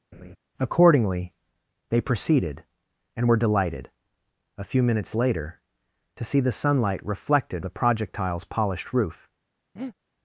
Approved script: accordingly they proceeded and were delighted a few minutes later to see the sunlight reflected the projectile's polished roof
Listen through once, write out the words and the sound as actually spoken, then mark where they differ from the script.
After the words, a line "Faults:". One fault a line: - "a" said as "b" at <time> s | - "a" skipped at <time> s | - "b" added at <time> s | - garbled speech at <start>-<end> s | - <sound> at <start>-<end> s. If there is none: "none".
accordingly they proceeded and were delighted a few minutes later to see the sunlight reflected the projectile's polished roof
Faults:
- laugh at 0.1-0.4 s
- breath at 9.8-10.0 s